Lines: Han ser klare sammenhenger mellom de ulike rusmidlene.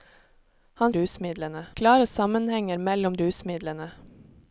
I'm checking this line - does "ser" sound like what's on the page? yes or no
no